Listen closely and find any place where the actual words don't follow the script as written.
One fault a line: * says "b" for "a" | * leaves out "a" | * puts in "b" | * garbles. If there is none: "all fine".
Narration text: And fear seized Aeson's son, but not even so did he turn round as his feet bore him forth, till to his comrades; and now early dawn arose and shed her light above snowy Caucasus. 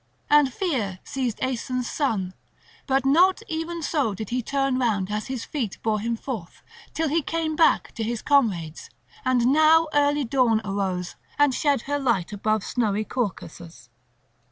* puts in "he came back"